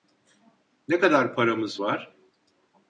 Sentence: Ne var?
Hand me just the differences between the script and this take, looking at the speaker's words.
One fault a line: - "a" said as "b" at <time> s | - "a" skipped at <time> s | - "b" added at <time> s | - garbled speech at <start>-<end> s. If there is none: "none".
- "kadar paramız" added at 1.0 s